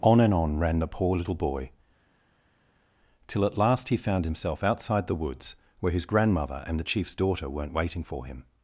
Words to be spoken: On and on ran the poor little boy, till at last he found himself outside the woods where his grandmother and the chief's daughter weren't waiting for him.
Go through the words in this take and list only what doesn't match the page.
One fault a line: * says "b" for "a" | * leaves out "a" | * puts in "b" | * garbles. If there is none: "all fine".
all fine